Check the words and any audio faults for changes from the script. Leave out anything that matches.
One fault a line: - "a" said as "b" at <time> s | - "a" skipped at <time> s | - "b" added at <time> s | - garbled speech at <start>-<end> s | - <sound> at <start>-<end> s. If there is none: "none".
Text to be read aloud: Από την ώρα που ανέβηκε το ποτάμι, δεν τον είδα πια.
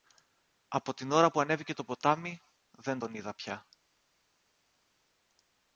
none